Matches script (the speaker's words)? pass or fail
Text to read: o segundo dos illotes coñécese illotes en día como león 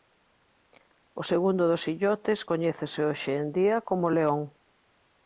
fail